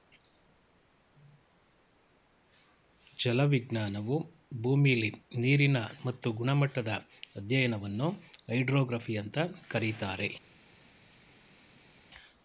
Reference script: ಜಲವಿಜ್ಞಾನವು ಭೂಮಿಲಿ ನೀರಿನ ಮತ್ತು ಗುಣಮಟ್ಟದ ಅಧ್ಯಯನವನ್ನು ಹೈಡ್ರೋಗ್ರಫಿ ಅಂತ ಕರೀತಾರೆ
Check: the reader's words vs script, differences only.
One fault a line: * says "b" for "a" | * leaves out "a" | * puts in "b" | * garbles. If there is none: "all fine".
all fine